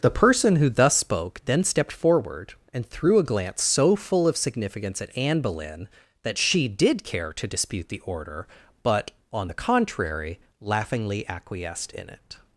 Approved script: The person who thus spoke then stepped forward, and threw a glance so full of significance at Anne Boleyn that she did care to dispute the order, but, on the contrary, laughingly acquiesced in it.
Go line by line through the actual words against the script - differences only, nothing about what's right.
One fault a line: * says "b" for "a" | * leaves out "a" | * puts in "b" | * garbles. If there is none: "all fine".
all fine